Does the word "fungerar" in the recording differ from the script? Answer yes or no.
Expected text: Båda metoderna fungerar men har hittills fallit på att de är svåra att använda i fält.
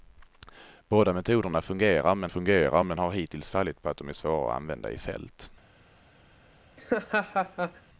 no